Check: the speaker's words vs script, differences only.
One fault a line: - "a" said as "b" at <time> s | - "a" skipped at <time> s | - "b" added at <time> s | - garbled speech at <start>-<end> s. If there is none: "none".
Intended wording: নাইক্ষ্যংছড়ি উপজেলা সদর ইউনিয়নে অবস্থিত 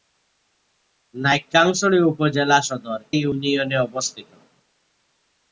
none